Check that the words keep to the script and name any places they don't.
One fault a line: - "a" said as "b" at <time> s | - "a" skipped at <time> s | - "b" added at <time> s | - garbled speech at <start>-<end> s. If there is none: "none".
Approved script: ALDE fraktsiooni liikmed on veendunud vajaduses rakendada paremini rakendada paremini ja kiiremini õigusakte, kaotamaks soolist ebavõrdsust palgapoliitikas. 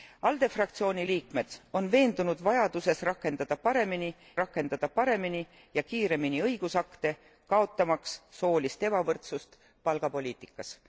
none